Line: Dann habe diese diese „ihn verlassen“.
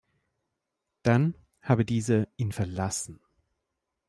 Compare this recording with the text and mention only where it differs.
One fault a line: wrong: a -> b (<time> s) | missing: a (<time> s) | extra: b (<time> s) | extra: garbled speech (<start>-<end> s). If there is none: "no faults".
missing: diese (2.3 s)